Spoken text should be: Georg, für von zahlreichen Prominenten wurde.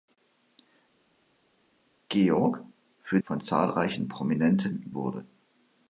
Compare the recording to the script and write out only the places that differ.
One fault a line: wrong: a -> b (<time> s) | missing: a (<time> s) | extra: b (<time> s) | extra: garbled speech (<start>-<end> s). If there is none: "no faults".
no faults